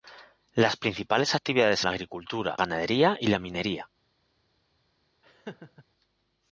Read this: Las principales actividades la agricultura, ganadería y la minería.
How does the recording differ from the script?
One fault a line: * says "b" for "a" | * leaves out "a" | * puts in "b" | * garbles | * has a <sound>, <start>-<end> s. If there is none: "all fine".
* has a laugh, 5.2-5.8 s